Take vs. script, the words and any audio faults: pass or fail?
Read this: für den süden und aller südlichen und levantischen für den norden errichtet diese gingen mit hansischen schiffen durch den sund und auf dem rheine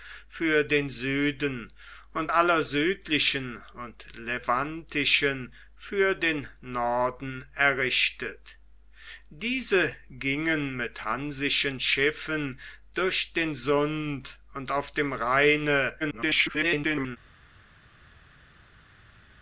fail